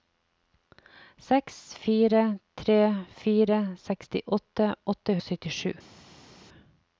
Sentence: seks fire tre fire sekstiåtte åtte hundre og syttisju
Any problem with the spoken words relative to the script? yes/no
yes